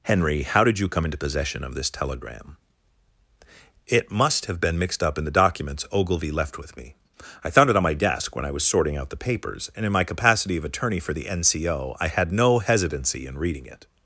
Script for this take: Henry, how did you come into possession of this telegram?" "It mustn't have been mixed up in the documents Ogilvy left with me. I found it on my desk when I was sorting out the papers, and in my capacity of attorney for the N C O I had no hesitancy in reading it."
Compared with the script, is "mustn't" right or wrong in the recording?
wrong